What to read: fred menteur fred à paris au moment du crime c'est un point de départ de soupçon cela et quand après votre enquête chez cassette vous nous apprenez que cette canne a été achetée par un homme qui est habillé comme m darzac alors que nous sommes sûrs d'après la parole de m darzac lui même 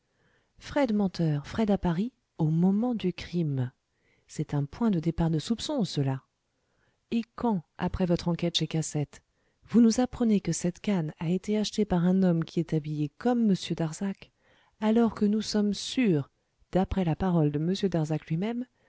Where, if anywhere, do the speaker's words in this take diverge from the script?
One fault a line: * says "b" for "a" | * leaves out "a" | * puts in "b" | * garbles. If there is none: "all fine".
all fine